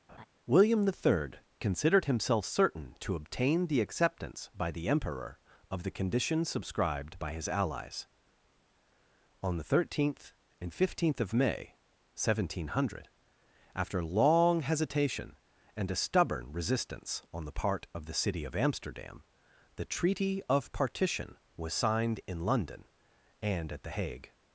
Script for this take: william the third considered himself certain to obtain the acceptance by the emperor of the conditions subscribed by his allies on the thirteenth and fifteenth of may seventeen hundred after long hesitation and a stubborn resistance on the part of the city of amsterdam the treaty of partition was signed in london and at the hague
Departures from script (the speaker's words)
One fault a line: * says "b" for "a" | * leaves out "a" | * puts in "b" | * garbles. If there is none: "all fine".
all fine